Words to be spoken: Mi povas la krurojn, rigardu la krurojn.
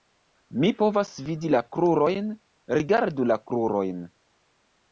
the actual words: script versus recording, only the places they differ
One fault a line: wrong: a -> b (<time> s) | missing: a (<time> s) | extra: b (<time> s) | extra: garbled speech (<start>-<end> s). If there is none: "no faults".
extra: vidi (1.3 s)